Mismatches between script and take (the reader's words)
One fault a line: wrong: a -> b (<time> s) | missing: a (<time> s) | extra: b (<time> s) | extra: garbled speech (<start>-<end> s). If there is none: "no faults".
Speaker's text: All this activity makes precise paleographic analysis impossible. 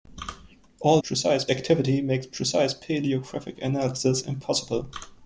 wrong: this -> precise (1.0 s)